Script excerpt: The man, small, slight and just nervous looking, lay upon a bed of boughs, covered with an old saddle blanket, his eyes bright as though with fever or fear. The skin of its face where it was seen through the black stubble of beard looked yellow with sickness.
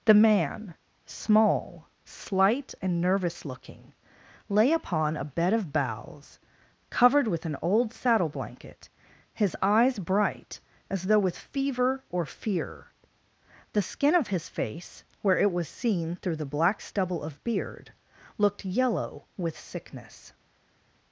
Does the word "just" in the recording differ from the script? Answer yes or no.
yes